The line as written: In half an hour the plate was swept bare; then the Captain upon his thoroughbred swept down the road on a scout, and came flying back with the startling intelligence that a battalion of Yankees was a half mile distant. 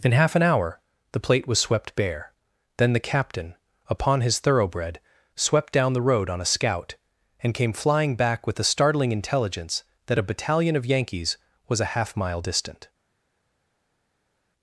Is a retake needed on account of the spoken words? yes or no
no